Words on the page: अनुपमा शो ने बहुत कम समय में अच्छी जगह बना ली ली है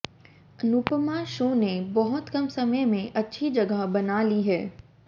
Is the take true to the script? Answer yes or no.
no